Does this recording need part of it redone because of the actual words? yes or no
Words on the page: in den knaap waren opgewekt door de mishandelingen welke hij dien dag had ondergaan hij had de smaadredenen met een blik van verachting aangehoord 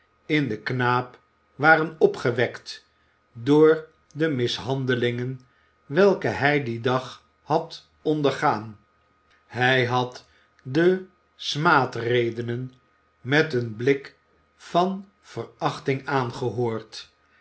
no